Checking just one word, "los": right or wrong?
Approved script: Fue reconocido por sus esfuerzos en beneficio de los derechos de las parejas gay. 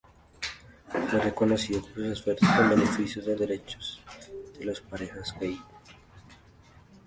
wrong